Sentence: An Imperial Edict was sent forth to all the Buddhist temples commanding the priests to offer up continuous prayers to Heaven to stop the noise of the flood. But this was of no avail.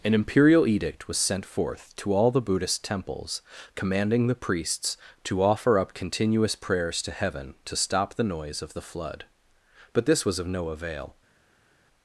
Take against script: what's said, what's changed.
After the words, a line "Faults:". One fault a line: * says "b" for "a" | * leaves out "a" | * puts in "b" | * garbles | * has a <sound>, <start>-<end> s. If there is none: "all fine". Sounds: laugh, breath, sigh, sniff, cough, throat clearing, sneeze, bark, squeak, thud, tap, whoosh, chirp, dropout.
An Imperial Edict was sent forth to all the Buddhist temples commanding the priests to offer up continuous prayers to Heaven to stop the noise of the flood. But this was of no avail.
Faults:
all fine